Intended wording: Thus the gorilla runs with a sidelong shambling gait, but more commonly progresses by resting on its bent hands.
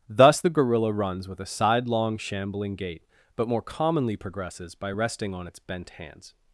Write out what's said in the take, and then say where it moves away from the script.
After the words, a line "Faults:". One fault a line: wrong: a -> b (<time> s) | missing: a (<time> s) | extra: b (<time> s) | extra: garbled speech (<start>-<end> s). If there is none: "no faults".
Thus the gorilla runs with a sidelong shambling gait, but more commonly progresses by resting on its bent hands.
Faults:
no faults